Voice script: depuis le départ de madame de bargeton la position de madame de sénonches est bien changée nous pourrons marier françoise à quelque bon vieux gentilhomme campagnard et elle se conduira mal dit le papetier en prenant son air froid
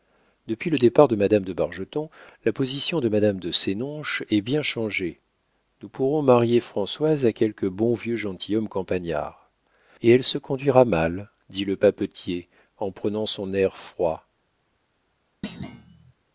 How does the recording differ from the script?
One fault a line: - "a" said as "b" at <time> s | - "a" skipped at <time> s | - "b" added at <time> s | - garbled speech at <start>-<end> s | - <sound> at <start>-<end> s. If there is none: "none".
- thud at 15.4-16.1 s